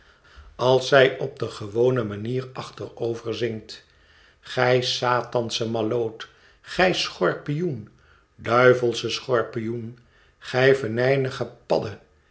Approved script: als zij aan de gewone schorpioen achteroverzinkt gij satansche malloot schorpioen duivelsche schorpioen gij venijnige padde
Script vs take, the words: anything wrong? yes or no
yes